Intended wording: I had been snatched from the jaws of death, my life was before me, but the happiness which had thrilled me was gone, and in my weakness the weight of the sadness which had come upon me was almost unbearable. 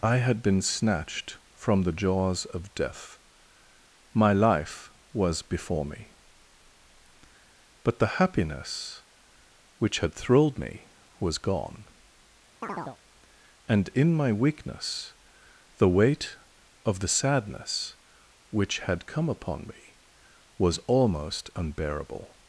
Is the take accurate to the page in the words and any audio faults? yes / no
no